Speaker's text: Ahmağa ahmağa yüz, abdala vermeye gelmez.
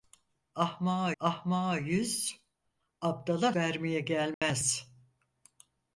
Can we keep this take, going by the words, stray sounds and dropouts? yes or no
no